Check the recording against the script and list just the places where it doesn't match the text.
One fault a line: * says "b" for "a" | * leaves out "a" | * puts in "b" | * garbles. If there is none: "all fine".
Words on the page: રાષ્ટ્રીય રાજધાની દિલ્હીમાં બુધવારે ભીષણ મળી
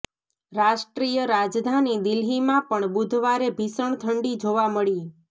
* puts in "પણ"
* puts in "ઠંડી જોવા"